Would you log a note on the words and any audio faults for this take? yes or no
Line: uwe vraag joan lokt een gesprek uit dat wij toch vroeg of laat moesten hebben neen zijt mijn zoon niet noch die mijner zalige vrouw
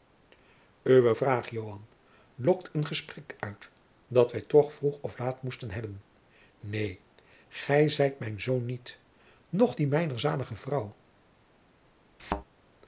yes